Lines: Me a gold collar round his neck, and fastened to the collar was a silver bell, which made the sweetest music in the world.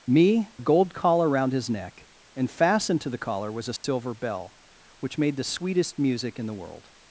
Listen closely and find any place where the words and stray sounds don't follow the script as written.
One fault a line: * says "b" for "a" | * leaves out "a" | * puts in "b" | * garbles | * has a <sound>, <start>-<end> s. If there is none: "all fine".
* has a dropout, 3.8-3.8 s